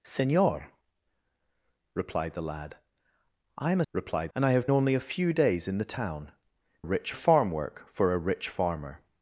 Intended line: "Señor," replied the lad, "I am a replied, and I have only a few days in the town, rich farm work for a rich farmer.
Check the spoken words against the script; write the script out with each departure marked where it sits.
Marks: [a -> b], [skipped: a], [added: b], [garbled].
"Señor," replied the lad, "I am a replied, and I have only a few days in the town, rich farm work for a rich farmer.